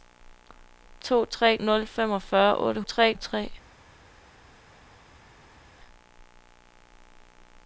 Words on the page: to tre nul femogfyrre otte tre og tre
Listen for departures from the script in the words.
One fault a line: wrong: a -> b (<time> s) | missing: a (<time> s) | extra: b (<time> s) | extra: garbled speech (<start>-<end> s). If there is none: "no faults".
no faults